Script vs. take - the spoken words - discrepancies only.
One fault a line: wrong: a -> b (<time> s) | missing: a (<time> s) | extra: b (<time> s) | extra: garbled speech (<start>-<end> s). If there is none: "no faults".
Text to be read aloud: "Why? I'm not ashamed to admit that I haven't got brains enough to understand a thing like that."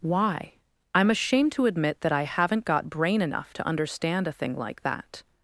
missing: not (1.1 s)
wrong: brains -> brain (2.9 s)